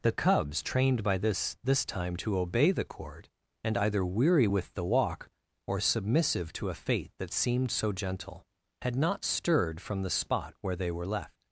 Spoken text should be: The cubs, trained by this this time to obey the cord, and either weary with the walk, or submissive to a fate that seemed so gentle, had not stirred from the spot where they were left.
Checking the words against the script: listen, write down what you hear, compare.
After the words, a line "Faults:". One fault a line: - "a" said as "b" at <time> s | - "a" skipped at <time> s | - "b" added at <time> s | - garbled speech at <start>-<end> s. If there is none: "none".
The cubs, trained by this this time to obey the cord, and either weary with the walk, or submissive to a fate that seemed so gentle, had not stirred from the spot where they were left.
Faults:
none